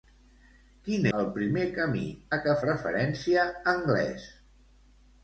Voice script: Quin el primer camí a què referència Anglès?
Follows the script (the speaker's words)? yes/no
yes